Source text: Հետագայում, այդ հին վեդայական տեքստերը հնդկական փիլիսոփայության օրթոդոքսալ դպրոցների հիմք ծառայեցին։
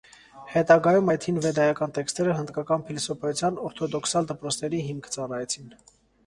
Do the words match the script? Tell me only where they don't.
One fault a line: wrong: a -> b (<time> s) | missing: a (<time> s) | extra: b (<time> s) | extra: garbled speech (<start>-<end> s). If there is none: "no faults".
no faults